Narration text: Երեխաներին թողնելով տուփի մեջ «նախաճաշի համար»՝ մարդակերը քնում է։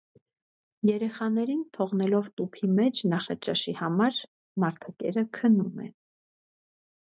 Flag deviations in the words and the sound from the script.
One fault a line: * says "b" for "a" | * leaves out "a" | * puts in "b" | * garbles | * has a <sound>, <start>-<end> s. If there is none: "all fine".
all fine